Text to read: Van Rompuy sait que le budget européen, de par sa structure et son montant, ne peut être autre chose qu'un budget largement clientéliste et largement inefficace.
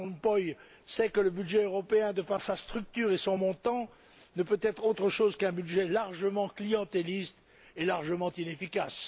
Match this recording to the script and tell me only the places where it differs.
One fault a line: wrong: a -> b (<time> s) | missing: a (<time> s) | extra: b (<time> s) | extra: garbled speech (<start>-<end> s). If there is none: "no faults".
no faults